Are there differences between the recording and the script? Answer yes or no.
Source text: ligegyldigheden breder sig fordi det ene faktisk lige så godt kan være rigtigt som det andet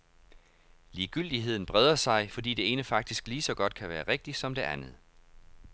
no